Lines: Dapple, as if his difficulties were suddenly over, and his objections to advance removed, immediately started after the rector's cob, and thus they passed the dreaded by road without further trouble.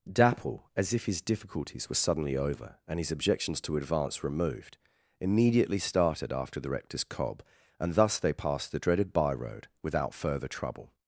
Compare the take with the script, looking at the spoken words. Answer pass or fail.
pass